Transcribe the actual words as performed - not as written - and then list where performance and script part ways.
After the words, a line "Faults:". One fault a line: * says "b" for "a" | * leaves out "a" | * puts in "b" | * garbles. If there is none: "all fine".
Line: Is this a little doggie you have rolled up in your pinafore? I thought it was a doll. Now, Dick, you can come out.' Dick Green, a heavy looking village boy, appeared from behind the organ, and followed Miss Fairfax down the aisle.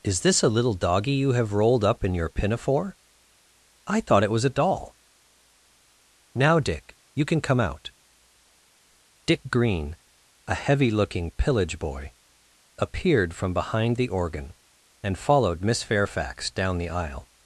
Is this a little doggie you have rolled up in your pinafore? I thought it was a doll. Now, Dick, you can come out.' Dick Green, a heavy looking pillage boy, appeared from behind the organ, and followed Miss Fairfax down the aisle.
Faults:
* says "pillage" for "village"